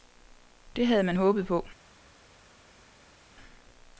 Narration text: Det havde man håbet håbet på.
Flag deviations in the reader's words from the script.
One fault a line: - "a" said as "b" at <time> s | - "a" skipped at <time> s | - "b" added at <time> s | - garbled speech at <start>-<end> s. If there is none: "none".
- "håbet" skipped at 1.5 s